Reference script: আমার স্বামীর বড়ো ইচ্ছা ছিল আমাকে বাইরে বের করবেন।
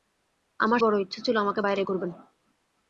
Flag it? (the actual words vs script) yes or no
yes